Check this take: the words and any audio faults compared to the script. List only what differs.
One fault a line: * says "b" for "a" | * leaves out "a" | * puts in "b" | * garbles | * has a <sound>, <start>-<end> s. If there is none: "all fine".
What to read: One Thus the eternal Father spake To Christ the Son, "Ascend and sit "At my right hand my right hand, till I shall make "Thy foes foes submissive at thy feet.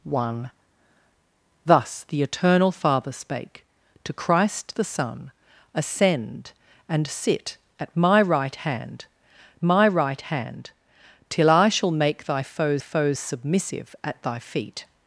all fine